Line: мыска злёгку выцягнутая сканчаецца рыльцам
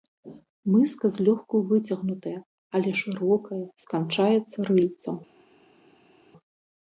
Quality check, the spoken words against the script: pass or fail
fail